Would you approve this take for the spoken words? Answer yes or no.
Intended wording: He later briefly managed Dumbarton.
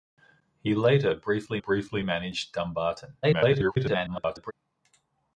no